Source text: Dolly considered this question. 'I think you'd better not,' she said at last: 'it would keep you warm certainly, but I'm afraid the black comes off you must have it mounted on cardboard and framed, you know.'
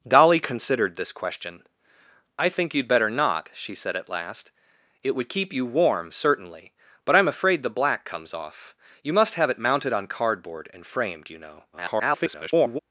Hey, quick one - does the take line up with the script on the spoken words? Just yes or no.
no